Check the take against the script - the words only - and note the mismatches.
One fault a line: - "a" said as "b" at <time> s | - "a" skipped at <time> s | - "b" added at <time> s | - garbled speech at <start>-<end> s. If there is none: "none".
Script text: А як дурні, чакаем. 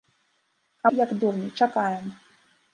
none